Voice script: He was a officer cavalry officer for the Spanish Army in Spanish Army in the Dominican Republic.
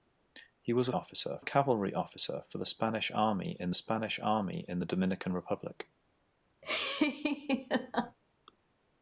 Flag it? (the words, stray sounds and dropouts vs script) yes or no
yes